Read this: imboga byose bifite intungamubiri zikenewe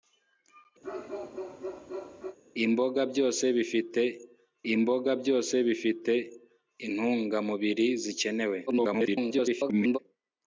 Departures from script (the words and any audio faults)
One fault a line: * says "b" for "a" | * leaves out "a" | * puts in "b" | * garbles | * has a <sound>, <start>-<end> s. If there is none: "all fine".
* has a bark, 0.8-2.4 s
* puts in "imboga byose bifite"
* garbles